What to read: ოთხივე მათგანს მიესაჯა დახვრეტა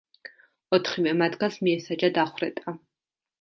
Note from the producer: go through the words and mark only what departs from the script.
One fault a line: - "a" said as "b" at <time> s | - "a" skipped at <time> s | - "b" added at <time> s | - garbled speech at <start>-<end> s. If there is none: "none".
none